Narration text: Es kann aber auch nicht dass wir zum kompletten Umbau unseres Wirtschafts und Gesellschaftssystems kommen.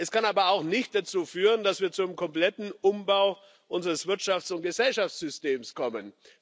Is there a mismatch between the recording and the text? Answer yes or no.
yes